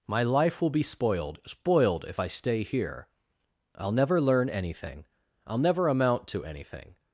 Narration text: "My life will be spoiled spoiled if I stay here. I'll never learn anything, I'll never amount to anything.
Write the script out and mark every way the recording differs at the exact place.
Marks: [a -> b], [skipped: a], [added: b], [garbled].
"My life will be spoiled spoiled if I stay here. I'll never learn anything, I'll never amount to anything.